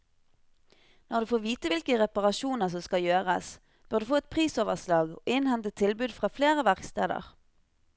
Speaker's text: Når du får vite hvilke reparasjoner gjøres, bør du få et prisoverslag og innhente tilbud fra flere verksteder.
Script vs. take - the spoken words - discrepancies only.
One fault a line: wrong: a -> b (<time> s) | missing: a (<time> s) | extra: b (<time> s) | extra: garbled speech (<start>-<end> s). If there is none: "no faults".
extra: som skal (2.7 s)